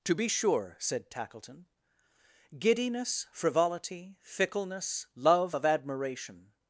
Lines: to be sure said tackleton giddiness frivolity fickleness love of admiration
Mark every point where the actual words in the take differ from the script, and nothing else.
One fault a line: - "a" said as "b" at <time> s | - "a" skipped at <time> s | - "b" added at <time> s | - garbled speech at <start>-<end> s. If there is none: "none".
none